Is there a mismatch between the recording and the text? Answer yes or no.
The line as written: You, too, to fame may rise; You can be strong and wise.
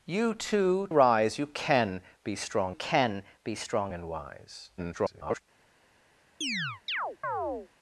yes